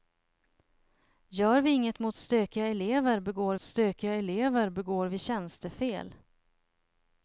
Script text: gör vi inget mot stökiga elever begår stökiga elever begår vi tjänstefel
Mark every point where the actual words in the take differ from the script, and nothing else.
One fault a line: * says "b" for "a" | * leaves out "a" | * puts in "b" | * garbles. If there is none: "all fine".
all fine